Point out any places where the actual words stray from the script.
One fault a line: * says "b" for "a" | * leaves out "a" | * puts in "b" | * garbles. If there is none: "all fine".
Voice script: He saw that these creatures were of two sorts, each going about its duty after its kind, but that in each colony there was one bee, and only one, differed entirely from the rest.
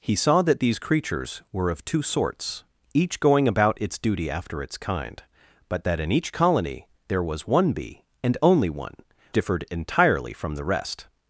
all fine